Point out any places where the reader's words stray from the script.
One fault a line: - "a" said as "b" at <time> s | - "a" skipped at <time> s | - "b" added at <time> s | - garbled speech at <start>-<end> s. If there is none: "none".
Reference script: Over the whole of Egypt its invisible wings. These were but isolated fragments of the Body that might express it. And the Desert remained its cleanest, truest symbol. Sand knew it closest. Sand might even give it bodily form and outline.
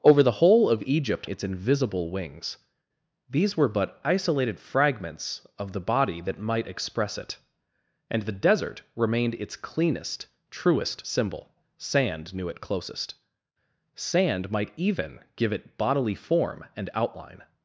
none